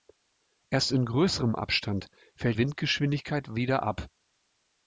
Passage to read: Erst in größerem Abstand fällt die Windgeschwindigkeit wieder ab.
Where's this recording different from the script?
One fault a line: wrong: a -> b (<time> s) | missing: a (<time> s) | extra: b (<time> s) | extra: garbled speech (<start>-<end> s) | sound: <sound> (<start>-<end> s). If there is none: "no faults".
missing: die (2.6 s)